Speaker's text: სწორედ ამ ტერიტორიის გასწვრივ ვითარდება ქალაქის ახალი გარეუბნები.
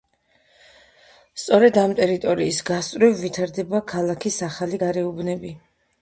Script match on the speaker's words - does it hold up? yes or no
yes